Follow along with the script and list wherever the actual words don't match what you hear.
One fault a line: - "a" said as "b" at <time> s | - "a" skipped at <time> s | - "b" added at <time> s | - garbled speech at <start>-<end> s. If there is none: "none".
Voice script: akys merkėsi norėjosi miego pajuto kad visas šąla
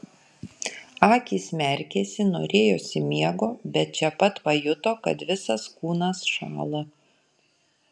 - "bet čia pat" added at 3.8 s
- "kūnas" added at 5.8 s